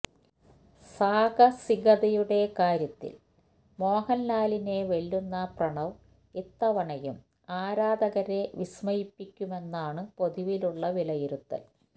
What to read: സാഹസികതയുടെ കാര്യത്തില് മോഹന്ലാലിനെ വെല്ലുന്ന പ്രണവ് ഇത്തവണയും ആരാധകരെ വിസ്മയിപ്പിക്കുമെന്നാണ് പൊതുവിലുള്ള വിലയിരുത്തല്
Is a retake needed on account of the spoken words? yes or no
no